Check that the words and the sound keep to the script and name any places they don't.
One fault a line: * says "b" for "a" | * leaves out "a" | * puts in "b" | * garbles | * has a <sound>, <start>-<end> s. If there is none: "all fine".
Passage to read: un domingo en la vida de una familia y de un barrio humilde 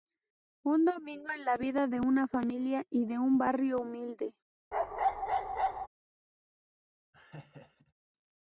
* has a bark, 4.7-5.9 s
* has a laugh, 7.1-7.9 s